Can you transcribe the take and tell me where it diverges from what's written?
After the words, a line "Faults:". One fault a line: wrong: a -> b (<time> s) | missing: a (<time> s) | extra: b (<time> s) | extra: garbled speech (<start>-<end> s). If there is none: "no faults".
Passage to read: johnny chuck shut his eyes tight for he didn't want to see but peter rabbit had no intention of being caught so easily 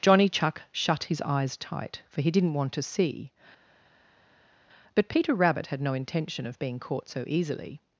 johnny chuck shut his eyes tight for he didn't want to see but peter rabbit had no intention of being caught so easily
Faults:
no faults